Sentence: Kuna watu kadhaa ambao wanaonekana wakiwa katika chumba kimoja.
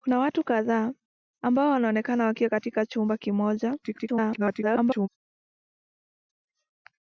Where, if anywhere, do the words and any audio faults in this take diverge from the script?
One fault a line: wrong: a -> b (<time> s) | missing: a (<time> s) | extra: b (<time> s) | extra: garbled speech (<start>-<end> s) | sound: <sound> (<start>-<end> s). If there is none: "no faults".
extra: garbled speech (3.8-5.1 s)